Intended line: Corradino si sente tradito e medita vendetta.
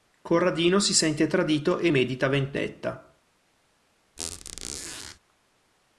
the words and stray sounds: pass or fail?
fail